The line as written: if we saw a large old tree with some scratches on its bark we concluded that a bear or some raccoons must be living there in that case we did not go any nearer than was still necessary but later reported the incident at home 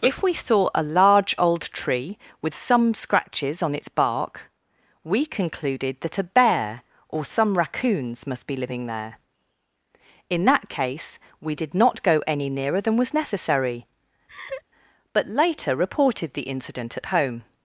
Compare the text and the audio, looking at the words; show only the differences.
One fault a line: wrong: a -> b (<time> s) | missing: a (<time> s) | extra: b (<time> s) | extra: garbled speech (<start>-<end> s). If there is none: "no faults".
missing: still (13.1 s)